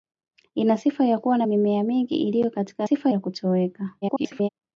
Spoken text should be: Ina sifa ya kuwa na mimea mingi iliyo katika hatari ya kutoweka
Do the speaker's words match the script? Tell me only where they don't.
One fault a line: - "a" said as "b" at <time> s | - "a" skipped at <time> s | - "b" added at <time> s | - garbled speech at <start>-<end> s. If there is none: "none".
- "hatari" said as "sifa" at 2.8 s
- garbled speech at 4.0-4.5 s